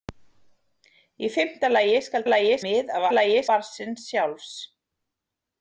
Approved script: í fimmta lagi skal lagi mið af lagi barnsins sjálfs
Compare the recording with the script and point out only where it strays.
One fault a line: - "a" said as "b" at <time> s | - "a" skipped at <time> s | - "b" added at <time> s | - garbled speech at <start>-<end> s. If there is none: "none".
none